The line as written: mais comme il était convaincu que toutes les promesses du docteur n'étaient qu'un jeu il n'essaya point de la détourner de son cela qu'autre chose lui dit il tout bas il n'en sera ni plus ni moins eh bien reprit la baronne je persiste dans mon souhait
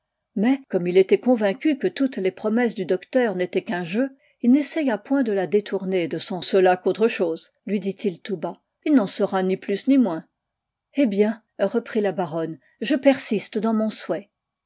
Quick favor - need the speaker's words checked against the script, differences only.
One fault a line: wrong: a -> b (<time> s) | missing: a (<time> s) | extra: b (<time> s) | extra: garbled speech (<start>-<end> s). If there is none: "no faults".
no faults